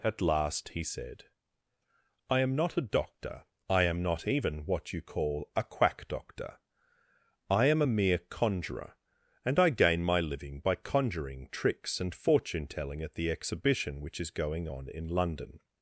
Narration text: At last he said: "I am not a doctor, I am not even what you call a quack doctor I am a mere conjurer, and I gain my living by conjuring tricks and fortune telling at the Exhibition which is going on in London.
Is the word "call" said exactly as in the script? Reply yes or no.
yes